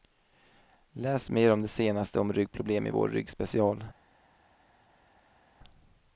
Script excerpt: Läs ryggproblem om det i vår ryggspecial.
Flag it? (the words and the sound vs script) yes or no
yes